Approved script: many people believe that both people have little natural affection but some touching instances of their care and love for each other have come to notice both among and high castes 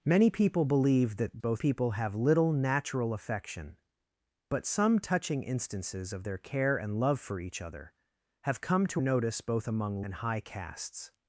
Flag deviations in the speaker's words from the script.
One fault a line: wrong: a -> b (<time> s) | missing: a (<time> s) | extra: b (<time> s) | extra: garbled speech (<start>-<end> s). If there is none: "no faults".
no faults